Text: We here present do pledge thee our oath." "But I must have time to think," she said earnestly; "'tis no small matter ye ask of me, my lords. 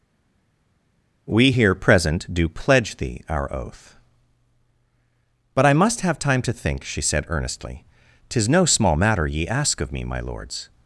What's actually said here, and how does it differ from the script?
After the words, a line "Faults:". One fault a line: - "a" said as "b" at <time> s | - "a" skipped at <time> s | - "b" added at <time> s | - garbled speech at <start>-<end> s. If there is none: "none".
We here present do pledge thee our oath." "But I must have time to think," she said earnestly; "'tis no small matter ye ask of me, my lords.
Faults:
none